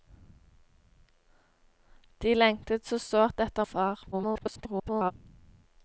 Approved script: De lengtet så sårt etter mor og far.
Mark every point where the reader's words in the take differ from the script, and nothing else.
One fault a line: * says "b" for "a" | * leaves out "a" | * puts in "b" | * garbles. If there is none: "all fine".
* leaves out "mor"
* garbles